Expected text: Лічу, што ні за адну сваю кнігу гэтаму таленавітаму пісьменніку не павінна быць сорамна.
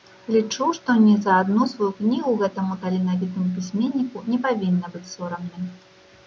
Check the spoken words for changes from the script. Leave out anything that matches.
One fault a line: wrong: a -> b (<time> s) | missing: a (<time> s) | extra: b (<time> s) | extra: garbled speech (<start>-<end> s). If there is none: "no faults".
no faults